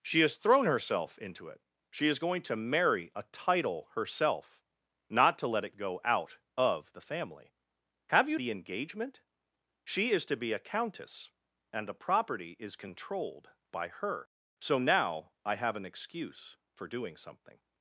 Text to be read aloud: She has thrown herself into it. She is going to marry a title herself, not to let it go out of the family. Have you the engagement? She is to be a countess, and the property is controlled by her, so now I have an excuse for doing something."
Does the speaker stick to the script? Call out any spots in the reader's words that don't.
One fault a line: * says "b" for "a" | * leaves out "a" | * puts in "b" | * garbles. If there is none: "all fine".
all fine